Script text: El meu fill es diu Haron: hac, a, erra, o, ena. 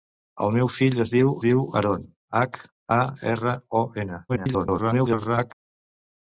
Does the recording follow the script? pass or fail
fail